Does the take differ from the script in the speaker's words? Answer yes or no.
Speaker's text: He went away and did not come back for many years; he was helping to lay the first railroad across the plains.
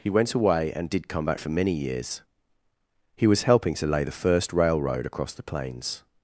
yes